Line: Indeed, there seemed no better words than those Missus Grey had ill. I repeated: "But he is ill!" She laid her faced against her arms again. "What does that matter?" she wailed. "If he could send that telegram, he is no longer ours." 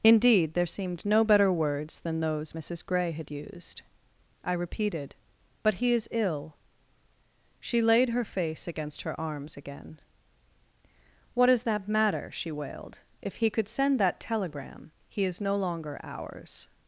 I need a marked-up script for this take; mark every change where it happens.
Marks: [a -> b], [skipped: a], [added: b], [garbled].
Indeed, there seemed no better words than those Missus Grey had [ill. -> used] I repeated: "But he is ill!" She laid her [faced -> face] against her arms again. "What does that matter?" she wailed. "If he could send that telegram, he is no longer ours."